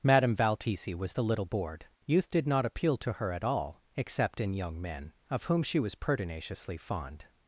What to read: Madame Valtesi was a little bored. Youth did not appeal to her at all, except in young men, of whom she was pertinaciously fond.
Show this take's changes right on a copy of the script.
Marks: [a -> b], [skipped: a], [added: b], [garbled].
Madame Valtesi was [a -> the] little bored. Youth did not appeal to her at all, except in young men, of whom she was pertinaciously fond.